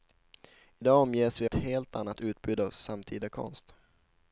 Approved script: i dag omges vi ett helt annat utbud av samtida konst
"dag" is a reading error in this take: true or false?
false